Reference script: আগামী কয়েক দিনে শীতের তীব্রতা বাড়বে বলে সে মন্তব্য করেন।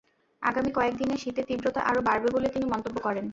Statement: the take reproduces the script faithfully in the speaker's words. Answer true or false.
false